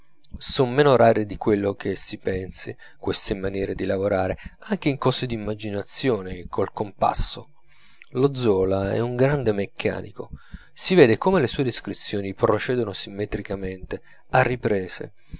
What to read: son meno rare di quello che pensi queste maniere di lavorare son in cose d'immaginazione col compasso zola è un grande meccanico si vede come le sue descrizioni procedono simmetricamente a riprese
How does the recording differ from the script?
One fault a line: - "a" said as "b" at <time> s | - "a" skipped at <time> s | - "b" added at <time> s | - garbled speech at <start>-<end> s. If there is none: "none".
- "si" added at 1.9 s
- "son" said as "anche" at 4.7 s
- "lo" added at 8.1 s